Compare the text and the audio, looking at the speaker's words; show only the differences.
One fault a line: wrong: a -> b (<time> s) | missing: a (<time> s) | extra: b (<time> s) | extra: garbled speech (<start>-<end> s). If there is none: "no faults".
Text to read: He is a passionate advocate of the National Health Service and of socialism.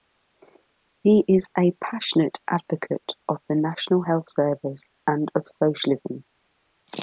no faults